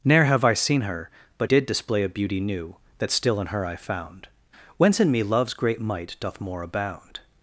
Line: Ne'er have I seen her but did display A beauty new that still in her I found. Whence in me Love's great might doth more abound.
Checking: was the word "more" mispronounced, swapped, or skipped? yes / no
no